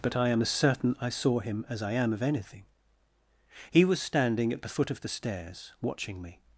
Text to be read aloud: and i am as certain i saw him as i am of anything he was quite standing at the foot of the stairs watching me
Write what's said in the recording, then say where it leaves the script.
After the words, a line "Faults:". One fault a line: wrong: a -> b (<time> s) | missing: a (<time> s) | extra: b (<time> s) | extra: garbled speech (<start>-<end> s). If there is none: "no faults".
but i am as certain i saw him as i am of anything he was standing at the foot of the stairs watching me
Faults:
wrong: and -> but (0.0 s)
missing: quite (4.0 s)